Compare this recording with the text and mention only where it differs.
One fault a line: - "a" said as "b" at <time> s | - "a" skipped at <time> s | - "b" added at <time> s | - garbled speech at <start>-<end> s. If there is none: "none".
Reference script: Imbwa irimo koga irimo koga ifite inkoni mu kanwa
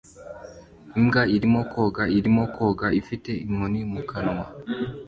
none